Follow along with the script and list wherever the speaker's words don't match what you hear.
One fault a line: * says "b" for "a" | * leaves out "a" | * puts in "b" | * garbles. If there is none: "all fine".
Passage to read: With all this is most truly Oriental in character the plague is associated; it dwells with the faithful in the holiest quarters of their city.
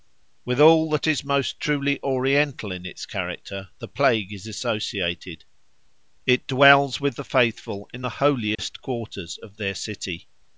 * says "that" for "this"
* puts in "its"